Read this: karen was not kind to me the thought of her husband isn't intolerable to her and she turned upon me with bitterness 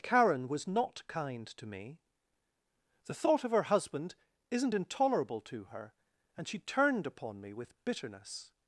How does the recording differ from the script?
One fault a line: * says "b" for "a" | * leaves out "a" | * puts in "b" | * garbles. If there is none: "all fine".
all fine